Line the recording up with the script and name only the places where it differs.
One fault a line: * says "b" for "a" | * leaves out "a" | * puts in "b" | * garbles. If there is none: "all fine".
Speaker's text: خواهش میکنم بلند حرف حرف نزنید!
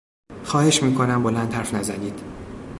* leaves out "حرف"